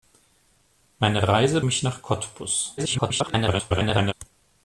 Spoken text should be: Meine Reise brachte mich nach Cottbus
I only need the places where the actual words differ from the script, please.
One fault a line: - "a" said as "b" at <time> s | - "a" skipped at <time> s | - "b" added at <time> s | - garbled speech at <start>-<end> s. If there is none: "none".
- "brachte" skipped at 1.6 s
- garbled speech at 2.8-4.1 s